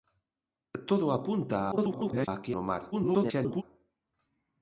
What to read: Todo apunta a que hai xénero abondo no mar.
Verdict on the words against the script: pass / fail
fail